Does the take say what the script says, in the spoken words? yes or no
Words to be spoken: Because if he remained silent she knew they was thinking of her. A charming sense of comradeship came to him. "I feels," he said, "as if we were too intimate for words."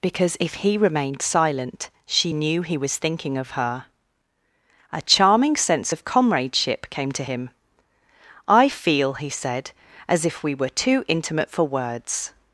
no